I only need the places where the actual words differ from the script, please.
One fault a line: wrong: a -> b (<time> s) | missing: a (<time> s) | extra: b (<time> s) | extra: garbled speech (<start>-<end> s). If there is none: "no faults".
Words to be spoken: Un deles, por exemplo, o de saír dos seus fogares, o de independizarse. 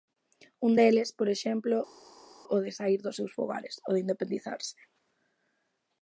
no faults